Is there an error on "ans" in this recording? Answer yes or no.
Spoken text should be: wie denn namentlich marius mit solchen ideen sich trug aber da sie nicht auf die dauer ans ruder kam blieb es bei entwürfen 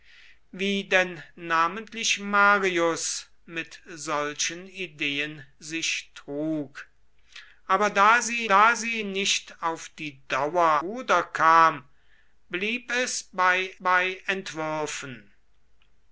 yes